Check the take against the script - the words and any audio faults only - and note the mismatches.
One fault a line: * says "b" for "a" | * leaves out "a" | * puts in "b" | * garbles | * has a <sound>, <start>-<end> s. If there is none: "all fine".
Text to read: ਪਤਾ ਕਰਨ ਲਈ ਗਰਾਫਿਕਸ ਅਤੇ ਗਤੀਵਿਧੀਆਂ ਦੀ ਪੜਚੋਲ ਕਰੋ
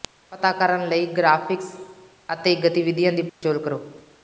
* has a dropout, 3.3-3.4 s